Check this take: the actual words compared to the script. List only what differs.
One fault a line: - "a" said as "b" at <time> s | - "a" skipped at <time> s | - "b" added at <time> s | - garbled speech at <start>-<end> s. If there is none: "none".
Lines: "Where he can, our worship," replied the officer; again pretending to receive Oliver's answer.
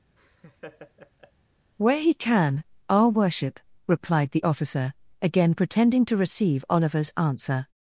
none